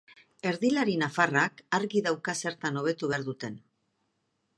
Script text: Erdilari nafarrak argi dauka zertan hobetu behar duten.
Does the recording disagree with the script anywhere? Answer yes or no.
no